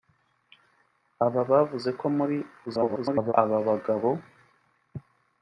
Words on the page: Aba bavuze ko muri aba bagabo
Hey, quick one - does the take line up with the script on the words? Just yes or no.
no